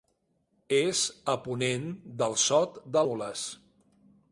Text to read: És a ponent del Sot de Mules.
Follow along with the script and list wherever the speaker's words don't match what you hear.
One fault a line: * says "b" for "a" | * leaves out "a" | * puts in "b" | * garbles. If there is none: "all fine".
all fine